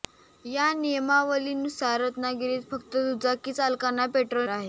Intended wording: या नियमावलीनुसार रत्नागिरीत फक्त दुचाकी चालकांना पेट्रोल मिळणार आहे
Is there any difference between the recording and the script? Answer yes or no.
yes